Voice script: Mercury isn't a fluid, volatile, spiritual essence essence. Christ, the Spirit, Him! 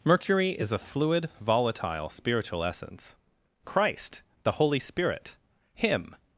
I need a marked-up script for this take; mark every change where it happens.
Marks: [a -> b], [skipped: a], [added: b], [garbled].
Mercury [isn't -> is] a fluid, volatile, spiritual essence [skipped: essence.] Christ, the [added: Holy] Spirit, Him!